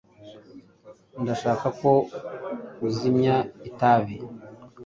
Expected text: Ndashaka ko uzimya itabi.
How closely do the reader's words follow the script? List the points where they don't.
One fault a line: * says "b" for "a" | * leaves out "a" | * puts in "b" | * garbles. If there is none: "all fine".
all fine